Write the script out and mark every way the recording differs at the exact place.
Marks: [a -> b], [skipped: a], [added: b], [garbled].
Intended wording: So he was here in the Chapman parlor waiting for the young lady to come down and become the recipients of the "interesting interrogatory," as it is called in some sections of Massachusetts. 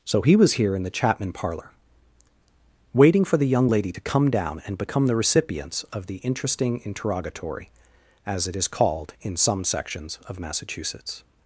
So he was here in the Chapman parlor waiting for the young lady to come down and become the recipients of the "interesting interrogatory," as it is called in some sections of Massachusetts.